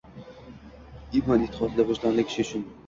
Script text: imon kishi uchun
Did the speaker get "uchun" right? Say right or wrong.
right